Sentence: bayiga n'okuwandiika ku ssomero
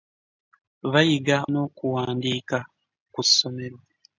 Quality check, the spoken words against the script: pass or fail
pass